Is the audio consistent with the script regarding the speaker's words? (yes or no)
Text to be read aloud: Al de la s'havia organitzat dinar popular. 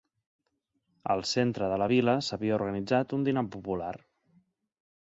no